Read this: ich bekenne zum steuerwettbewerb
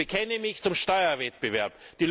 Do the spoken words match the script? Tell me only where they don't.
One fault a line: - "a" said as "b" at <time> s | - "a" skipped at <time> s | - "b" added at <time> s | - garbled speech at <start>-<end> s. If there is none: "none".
- "mich" added at 0.4 s